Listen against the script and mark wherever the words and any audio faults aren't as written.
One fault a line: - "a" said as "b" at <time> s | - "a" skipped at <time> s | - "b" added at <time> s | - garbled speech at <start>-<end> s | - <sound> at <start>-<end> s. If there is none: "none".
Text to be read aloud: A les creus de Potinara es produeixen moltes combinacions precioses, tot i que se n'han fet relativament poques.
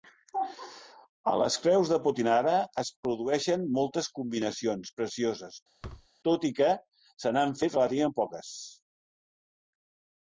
- thud at 5.8-6.1 s